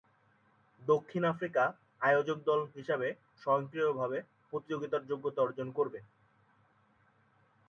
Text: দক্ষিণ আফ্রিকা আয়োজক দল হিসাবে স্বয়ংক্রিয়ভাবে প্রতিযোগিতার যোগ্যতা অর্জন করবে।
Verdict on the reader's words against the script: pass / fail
pass